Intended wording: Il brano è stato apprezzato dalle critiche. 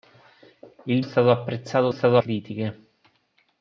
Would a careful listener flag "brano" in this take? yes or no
yes